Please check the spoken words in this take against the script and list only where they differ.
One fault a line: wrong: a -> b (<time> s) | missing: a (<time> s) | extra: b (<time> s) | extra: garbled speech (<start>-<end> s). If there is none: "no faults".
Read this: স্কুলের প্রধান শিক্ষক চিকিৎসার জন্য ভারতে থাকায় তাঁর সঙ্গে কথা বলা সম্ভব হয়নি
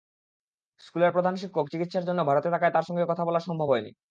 no faults